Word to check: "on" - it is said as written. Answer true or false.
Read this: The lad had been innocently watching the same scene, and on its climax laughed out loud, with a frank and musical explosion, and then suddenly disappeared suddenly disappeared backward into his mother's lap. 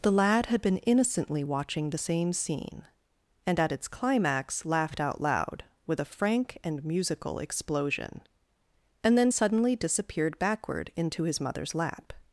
false